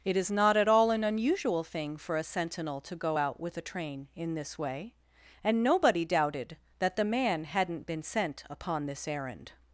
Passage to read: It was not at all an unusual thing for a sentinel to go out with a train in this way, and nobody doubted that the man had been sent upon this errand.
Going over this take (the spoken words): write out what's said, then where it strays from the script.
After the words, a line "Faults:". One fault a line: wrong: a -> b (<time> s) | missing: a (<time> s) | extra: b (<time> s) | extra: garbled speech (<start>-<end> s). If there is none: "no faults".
It is not at all an unusual thing for a sentinel to go out with a train in this way, and nobody doubted that the man hadn't been sent upon this errand.
Faults:
wrong: was -> is (0.2 s)
wrong: had -> hadn't (7.4 s)